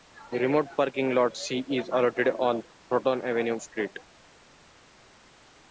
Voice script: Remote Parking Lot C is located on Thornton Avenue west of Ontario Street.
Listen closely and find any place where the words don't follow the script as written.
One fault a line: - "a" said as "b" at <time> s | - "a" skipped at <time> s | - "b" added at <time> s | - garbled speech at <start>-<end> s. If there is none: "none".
- "west of Ontario" skipped at 3.6 s